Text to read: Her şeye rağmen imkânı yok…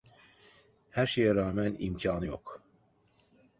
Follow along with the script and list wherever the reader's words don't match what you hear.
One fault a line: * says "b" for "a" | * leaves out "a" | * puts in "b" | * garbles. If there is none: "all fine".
all fine